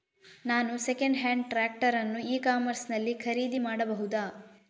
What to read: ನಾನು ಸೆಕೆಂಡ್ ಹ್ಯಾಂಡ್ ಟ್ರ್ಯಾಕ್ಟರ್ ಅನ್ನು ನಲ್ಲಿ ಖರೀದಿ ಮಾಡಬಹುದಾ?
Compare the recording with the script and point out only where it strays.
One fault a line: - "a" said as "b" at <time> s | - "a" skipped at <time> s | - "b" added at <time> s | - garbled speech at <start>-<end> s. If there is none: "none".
- "ಇ ಕಾಮರ್ಸ್" added at 2.3 s